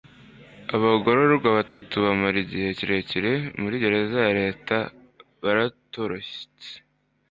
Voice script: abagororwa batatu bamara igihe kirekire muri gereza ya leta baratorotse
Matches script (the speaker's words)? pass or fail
pass